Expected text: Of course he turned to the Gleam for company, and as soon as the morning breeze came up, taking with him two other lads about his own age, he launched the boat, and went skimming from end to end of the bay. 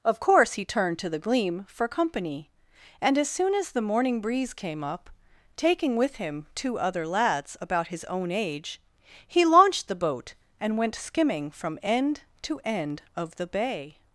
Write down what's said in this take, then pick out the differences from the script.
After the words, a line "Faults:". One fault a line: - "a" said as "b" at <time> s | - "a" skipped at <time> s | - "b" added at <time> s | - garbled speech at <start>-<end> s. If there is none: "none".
Of course he turned to the Gleam for company, and as soon as the morning breeze came up, taking with him two other lads about his own age, he launched the boat, and went skimming from end to end of the bay.
Faults:
none